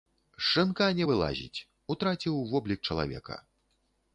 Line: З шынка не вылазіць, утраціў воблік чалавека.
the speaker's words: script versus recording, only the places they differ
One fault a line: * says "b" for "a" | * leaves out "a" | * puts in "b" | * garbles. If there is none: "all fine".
all fine